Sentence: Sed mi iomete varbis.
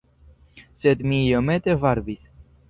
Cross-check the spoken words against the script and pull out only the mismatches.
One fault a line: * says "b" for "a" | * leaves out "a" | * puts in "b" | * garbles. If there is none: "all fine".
all fine